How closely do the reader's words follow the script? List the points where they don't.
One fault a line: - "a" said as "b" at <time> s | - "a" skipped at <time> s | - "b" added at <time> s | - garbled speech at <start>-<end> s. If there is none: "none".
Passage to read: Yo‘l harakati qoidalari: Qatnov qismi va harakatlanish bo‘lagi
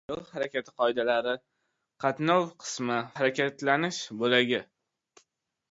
- "va" skipped at 3.0 s